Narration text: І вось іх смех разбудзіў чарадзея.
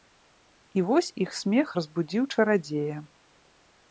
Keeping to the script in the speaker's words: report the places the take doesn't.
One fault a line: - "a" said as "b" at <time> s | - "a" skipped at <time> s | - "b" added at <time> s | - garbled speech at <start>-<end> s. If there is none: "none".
none